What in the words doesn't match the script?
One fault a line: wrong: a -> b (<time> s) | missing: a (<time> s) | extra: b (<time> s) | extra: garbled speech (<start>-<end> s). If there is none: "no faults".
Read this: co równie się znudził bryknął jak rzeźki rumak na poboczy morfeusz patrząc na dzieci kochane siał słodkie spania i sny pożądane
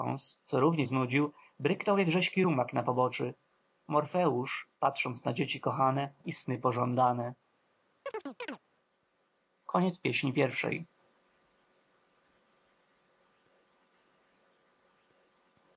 missing: się (0.9 s)
missing: siał słodkie spania (6.1 s)